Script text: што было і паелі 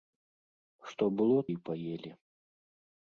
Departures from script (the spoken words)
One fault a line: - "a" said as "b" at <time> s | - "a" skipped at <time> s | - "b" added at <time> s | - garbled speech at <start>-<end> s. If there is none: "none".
none